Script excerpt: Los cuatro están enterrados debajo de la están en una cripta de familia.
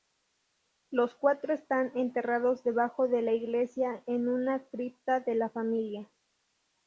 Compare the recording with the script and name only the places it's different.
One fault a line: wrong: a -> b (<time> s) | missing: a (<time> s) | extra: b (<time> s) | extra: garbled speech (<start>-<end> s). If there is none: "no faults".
wrong: están -> iglesia (3.3 s)
extra: la (5.3 s)